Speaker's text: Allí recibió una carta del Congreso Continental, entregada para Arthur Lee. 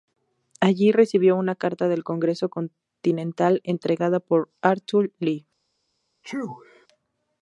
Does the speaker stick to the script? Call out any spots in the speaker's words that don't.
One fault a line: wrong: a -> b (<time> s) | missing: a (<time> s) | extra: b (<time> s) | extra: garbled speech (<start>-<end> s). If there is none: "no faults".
wrong: para -> por (4.2 s)